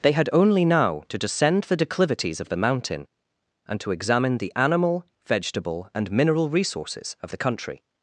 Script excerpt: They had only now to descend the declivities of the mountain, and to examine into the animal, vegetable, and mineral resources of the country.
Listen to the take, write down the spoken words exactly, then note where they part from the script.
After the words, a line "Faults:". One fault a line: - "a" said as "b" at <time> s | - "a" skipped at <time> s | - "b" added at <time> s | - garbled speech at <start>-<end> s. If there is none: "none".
They had only now to descend the declivities of the mountain, and to examine the animal, vegetable, and mineral resources of the country.
Faults:
- "into" skipped at 4.4 s